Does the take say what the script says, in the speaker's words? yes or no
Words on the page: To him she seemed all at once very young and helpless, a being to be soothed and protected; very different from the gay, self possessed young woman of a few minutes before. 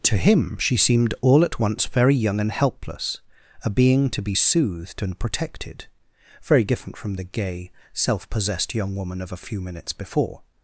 yes